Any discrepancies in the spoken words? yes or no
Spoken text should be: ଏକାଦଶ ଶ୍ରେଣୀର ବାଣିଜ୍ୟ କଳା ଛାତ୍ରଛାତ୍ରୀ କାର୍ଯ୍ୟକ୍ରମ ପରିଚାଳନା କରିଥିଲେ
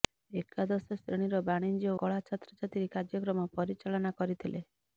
no